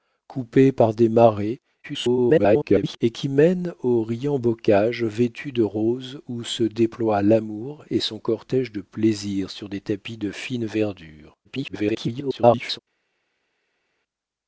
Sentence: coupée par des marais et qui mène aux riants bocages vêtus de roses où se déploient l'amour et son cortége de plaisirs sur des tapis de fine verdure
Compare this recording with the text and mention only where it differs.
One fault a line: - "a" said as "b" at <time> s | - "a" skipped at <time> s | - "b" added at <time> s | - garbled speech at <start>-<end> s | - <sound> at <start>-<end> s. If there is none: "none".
- garbled speech at 1.8-3.0 s
- garbled speech at 11.4-12.8 s